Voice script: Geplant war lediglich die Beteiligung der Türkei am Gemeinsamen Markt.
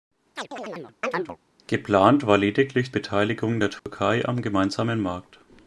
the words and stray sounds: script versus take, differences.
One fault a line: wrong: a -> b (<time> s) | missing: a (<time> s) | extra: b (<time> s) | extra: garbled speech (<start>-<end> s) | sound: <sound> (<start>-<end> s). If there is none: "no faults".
sound: chirp (0.4-1.4 s)
missing: die (2.9 s)
sound: dropout (3.8-3.9 s)